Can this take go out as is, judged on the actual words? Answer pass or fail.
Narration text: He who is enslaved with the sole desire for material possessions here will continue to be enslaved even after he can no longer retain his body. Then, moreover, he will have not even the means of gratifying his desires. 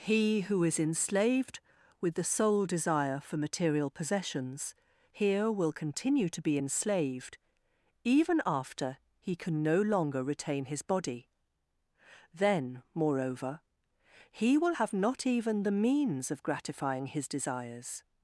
pass